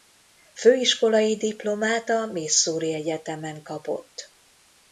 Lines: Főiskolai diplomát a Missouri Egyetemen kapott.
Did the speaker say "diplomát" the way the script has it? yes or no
yes